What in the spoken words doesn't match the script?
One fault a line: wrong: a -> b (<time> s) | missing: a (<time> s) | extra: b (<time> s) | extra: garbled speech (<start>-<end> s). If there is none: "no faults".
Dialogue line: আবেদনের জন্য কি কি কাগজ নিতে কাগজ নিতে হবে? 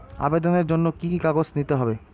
missing: কাগজ নিতে (1.7 s)